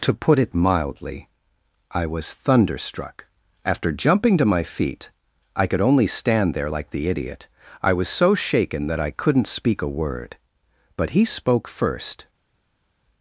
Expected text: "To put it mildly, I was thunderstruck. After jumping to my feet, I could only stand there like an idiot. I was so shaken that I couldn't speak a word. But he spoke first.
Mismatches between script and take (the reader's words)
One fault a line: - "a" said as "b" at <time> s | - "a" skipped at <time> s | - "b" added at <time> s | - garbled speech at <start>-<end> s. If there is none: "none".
- "an" said as "the" at 6.9 s